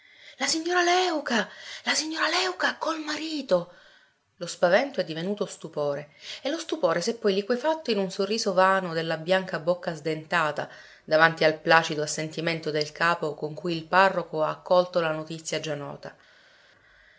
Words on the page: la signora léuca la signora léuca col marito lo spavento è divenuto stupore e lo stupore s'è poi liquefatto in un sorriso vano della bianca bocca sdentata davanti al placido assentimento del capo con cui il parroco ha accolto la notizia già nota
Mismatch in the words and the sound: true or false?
false